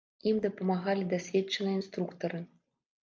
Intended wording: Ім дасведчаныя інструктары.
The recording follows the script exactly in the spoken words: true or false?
false